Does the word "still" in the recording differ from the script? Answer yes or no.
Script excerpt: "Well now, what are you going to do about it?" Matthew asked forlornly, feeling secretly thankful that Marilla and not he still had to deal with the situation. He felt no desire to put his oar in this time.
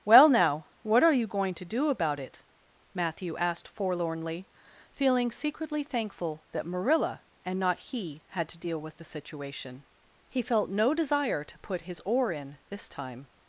yes